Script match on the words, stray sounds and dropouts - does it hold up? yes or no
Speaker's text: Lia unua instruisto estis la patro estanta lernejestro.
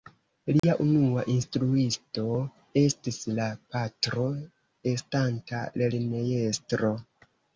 no